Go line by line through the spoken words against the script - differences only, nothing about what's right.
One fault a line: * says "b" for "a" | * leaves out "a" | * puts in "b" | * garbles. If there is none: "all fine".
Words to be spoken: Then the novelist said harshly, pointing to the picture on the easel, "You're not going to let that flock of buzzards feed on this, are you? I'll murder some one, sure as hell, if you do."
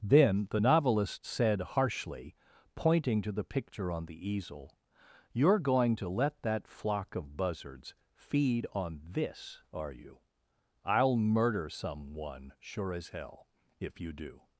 * leaves out "not"